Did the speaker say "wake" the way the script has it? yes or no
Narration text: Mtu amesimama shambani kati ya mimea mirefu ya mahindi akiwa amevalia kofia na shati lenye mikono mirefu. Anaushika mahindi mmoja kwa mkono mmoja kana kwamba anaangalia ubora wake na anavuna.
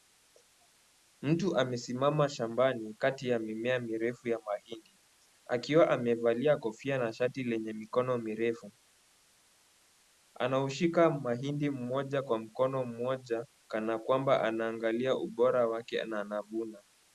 yes